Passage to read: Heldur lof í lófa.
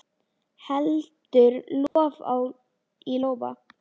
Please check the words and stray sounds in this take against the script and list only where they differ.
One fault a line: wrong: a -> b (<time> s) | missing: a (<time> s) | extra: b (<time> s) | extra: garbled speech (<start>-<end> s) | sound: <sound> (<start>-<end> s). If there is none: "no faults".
sound: dropout (1.9-2.0 s)